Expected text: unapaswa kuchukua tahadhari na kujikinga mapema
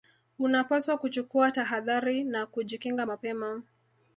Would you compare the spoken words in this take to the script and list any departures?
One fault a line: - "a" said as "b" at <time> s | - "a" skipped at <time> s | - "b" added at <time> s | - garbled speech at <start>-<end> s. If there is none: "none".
none